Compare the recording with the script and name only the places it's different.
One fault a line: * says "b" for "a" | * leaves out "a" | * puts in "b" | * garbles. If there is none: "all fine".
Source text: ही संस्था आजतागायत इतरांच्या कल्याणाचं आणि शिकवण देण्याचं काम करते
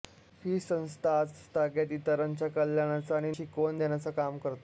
all fine